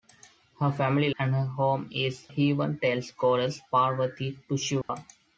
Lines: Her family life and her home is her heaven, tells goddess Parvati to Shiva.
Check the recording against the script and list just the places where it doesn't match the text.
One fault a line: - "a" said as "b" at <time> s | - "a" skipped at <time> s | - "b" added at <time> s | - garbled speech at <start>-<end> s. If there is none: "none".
- "life" skipped at 1.1 s
- "her" skipped at 2.3 s